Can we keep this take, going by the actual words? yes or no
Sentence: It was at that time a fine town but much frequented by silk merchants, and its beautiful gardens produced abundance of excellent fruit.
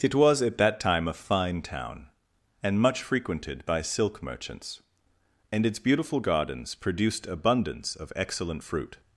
no